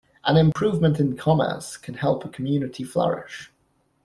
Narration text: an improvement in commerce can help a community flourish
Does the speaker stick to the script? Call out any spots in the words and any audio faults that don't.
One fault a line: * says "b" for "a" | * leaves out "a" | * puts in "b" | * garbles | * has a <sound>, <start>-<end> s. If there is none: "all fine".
* has a dropout, 0.5-0.6 s